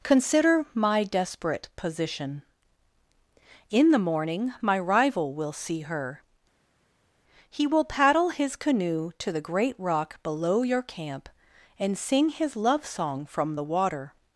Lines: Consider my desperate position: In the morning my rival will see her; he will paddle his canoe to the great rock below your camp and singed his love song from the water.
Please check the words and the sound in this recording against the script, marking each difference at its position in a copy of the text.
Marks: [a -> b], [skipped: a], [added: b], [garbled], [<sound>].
Consider my desperate position: In the morning my rival will see her; he will paddle his canoe to the great rock below your camp and [singed -> sing] his love song from the water.